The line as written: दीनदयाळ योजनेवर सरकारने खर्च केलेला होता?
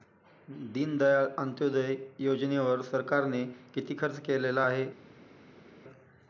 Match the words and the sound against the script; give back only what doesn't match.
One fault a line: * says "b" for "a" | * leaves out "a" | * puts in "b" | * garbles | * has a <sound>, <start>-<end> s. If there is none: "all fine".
* puts in "अंत्योदय"
* puts in "किती"
* says "आहे" for "होता"